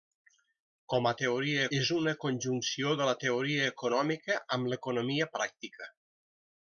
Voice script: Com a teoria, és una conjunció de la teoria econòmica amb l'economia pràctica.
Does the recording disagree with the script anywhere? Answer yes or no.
no